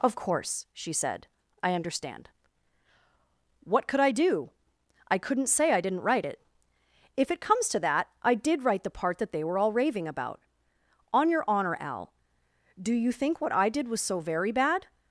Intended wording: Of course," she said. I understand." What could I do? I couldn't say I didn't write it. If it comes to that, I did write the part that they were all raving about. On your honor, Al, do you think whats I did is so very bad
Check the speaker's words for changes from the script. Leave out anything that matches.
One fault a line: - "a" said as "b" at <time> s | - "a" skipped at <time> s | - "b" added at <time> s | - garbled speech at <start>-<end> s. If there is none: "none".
- "whats" said as "what" at 13.4 s
- "is" said as "was" at 13.9 s